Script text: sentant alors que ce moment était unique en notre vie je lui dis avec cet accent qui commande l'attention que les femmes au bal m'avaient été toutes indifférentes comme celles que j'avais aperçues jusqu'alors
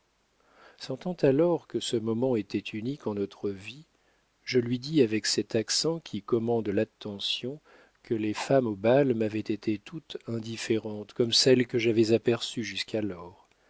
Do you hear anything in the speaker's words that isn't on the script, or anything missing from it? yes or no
no